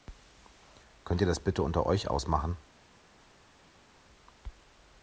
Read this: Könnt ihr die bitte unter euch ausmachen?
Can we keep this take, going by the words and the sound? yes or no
no